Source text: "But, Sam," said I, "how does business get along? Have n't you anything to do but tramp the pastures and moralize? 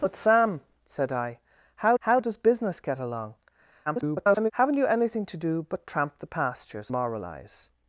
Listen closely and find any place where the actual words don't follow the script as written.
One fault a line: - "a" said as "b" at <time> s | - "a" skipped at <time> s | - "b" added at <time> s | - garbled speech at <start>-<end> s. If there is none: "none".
- "how" added at 2.0 s
- garbled speech at 3.9-4.5 s
- "and" skipped at 6.9 s